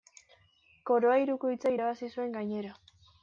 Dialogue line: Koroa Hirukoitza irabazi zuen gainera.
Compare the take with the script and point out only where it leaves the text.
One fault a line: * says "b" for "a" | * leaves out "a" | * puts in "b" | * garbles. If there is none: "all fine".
all fine